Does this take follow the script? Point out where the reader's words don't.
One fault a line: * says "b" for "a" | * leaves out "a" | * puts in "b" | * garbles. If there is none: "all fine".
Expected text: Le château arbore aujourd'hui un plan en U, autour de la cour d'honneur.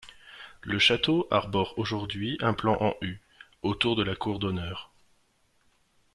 all fine